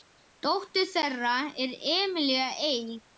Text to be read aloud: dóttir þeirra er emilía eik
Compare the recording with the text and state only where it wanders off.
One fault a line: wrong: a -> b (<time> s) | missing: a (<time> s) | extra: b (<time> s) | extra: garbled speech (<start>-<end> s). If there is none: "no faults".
no faults